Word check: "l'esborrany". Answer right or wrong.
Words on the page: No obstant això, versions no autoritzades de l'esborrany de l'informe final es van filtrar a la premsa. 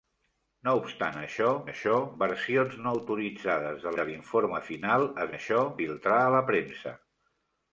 wrong